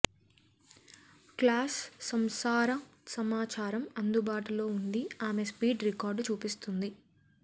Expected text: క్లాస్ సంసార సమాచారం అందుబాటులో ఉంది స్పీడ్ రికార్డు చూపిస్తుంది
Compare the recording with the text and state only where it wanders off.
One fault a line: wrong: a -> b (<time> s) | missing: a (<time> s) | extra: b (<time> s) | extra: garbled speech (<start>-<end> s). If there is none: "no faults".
extra: ఆమె (5.3 s)